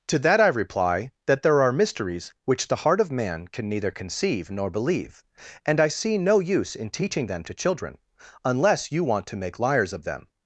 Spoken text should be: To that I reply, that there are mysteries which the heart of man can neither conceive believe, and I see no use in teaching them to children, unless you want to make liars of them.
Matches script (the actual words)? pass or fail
fail